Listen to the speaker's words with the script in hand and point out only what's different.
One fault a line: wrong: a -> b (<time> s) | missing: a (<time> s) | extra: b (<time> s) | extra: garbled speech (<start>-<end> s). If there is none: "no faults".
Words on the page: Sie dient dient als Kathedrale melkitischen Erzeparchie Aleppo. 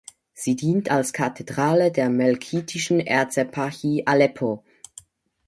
missing: dient (0.9 s)
extra: der (1.9 s)